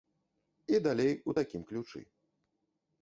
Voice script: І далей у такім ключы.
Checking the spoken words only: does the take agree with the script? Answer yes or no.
yes